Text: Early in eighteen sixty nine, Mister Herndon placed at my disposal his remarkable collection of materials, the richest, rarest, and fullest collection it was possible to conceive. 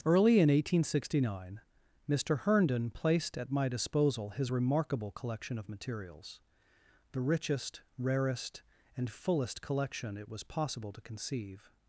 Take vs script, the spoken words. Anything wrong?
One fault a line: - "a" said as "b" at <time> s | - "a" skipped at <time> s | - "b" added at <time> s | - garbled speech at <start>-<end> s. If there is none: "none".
none